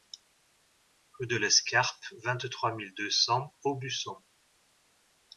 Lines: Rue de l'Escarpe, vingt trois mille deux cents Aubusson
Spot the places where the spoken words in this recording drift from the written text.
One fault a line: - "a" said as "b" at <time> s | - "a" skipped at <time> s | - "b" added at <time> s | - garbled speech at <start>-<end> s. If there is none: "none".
none